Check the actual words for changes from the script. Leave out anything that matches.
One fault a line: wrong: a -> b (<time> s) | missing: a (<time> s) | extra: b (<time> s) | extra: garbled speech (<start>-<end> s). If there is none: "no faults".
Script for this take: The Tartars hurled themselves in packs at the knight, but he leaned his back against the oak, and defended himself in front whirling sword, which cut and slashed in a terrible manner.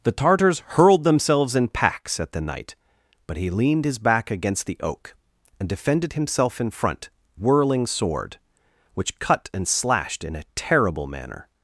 no faults